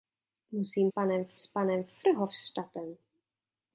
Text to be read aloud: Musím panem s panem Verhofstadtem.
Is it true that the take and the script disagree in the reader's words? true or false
false